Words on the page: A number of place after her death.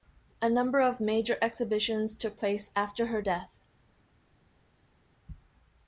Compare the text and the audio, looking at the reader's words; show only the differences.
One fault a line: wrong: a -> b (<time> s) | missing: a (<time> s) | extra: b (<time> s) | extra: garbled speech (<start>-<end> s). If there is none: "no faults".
extra: major exhibitions took (1.0 s)